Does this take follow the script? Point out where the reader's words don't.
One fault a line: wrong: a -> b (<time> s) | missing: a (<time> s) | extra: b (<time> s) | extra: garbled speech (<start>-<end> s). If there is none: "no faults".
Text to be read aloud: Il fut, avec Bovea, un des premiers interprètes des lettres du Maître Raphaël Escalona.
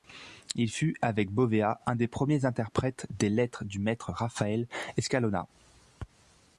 no faults